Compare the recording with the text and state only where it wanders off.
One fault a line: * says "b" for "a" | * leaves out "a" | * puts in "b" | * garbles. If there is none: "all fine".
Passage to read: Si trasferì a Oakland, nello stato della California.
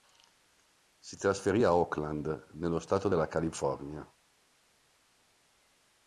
all fine